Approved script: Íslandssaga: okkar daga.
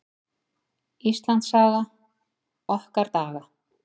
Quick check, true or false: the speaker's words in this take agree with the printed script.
true